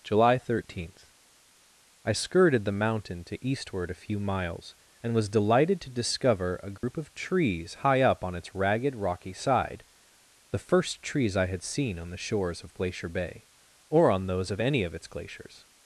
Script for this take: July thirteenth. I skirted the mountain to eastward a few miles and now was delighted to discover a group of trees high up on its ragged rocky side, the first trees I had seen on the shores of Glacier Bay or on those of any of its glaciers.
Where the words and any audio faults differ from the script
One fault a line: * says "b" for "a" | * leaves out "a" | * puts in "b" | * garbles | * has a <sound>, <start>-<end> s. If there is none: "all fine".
* leaves out "now"
* has a dropout, 6.8-6.8 s